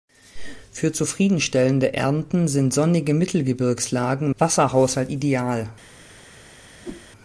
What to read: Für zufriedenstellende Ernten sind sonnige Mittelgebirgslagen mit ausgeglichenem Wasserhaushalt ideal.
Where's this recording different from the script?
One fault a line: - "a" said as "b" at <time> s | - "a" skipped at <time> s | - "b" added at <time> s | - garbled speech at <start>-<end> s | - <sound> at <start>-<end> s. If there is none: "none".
- "mit ausgeglichenem" skipped at 4.3 s
- whoosh at 6.8-7.1 s